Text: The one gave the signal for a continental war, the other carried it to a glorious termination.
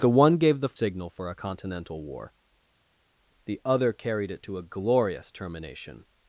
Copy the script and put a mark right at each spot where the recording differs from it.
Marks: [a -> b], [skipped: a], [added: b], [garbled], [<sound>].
The one gave the signal for a continental war, the other carried it to a glorious termination.